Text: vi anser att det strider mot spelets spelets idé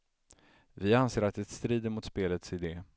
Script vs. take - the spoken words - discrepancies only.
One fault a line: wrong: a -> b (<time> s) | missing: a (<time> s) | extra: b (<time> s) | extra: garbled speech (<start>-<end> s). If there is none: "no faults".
missing: spelets (2.5 s)